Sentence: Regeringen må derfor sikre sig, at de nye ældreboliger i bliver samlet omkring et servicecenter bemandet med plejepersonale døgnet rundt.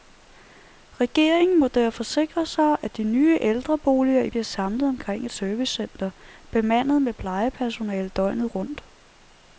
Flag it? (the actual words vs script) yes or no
no